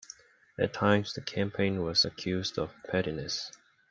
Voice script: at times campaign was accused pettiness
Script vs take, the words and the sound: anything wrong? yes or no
yes